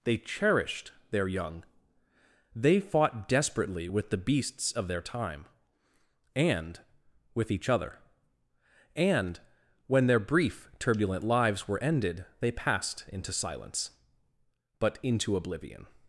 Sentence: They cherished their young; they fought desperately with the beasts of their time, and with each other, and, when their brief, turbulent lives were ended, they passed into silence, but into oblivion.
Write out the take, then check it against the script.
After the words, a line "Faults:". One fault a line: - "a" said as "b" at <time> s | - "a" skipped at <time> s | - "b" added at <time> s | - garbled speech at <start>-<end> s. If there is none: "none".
They cherished their young; they fought desperately with the beasts of their time, and with each other, and, when their brief, turbulent lives were ended, they passed into silence, but into oblivion.
Faults:
none